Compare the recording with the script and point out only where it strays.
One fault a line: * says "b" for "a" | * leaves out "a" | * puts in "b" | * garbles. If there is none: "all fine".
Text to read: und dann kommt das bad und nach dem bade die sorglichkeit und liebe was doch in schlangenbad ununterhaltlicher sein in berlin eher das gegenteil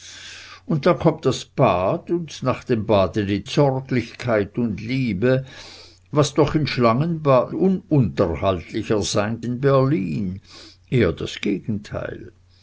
all fine